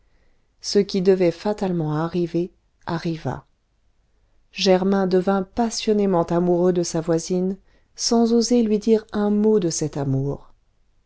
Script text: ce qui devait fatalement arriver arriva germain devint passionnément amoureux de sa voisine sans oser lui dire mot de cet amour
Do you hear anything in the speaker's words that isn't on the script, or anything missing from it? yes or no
yes